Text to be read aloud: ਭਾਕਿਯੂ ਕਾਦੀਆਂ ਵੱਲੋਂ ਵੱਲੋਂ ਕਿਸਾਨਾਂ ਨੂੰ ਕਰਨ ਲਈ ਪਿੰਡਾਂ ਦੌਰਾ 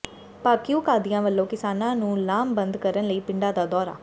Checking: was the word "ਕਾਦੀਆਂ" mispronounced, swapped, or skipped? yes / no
no